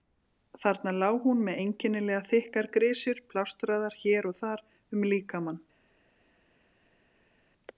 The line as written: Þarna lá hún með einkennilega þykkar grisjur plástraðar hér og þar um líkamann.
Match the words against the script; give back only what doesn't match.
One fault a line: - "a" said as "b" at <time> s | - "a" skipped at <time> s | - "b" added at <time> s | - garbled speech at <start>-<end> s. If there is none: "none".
none